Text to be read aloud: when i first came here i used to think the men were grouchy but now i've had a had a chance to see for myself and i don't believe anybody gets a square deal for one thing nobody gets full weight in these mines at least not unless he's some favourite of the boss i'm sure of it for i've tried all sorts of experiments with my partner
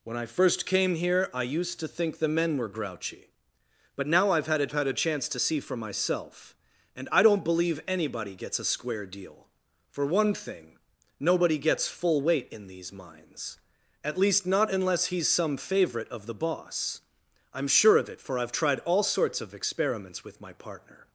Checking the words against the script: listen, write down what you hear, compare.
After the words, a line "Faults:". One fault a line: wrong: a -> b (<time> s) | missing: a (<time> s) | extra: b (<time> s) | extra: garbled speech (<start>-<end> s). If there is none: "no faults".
when i first came here i used to think the men were grouchy but now i've had a had a chance to see for myself and i don't believe anybody gets a square deal for one thing nobody gets full weight in these mines at least not unless he's some favourite of the boss i'm sure of it for i've tried all sorts of experiments with my partner
Faults:
no faults